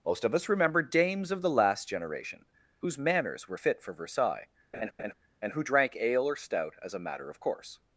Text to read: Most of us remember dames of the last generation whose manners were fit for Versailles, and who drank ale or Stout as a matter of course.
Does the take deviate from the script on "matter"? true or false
false